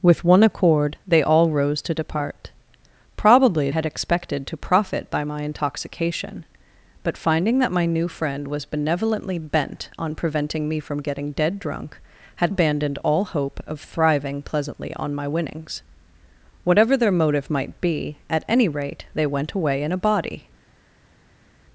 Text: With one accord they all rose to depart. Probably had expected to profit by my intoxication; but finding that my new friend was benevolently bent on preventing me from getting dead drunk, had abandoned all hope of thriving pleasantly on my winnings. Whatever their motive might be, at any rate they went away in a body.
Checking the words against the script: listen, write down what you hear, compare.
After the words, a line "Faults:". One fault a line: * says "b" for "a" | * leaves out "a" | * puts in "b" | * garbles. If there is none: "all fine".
With one accord they all rose to depart. Probably had expected to profit by my intoxication; but finding that my new friend was benevolently bent on preventing me from getting dead drunk, had abandoned all hope of thriving pleasantly on my winnings. Whatever their motive might be, at any rate they went away in a body.
Faults:
all fine